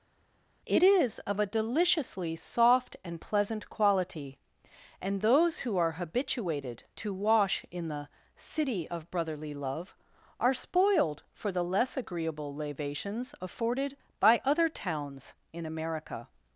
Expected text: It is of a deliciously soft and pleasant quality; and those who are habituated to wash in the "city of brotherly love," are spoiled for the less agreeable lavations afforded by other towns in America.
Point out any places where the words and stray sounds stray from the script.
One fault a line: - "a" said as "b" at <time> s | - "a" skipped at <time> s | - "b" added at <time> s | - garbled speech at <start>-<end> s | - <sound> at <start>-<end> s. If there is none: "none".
none